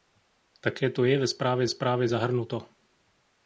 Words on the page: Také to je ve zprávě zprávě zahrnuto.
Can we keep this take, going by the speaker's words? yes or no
yes